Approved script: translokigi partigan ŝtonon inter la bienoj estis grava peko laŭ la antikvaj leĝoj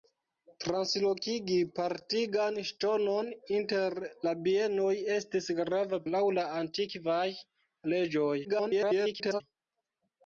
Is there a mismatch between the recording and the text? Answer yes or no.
yes